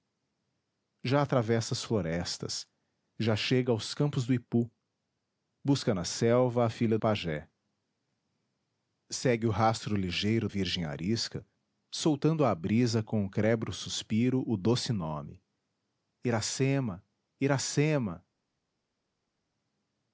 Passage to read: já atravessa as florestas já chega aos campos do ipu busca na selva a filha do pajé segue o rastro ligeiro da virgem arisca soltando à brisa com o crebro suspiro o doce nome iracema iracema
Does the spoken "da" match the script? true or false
false